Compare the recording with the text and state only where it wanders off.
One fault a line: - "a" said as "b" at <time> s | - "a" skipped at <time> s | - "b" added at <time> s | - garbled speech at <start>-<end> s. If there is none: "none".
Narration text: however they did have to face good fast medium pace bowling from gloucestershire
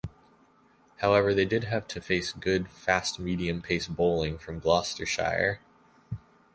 none